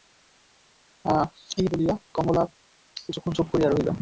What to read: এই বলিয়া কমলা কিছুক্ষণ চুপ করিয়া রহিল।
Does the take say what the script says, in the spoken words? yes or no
yes